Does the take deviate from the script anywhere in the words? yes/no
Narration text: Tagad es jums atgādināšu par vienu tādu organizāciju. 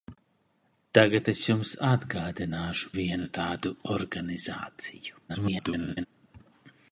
yes